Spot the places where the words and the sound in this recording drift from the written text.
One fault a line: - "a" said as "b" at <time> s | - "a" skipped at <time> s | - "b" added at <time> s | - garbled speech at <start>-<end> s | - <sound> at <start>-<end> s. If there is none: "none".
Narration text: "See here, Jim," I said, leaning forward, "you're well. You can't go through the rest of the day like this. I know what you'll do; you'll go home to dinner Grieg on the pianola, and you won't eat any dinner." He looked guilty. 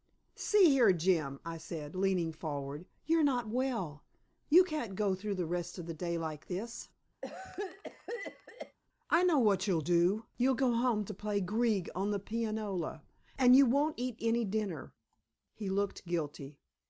- "not" added at 3.2 s
- cough at 7.2-8.8 s
- "dinner" said as "play" at 11.1 s